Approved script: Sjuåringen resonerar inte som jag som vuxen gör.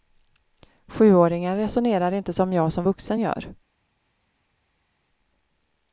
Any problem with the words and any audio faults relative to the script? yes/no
no